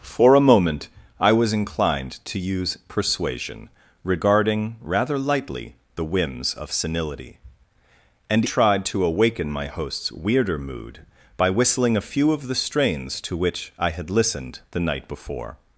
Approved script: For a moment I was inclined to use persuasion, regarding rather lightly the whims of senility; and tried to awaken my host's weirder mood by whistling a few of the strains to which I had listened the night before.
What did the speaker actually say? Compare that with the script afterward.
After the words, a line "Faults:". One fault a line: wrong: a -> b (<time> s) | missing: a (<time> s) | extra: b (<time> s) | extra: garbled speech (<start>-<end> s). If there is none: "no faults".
For a moment I was inclined to use persuasion, regarding rather lightly the whims of senility; and tried to awaken my host's weirder mood by whistling a few of the strains to which I had listened the night before.
Faults:
no faults